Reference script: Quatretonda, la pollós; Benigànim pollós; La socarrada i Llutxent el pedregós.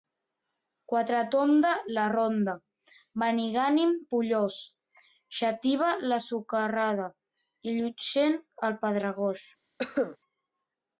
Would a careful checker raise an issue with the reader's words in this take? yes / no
yes